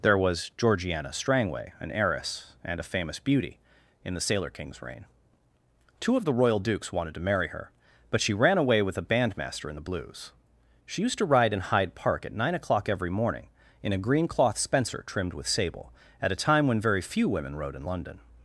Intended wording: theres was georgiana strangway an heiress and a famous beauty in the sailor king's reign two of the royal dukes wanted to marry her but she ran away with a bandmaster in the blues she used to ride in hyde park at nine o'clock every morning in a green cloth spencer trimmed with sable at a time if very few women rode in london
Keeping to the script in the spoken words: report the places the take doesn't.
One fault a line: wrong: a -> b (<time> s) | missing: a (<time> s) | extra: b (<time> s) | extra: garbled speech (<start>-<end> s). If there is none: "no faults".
wrong: theres -> there (0.0 s)
wrong: if -> when (16.7 s)